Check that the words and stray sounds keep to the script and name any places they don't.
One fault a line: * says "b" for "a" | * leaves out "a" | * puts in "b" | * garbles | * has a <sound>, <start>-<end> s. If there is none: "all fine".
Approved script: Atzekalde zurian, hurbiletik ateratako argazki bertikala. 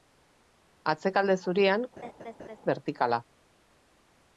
* leaves out "hurbiletik ateratako argazki"
* has a laugh, 2.0-2.6 s